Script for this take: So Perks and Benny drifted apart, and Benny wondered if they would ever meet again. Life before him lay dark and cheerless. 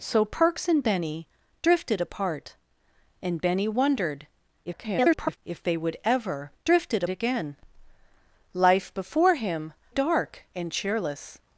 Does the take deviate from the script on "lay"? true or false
true